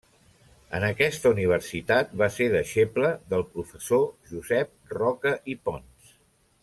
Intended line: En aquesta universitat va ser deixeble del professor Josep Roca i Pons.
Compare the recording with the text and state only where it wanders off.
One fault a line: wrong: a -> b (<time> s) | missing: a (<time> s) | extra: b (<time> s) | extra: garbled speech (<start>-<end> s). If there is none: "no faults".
no faults